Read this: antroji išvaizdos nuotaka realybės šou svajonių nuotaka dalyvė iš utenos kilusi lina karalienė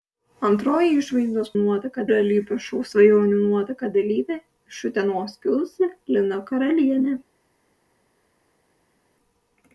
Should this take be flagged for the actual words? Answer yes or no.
no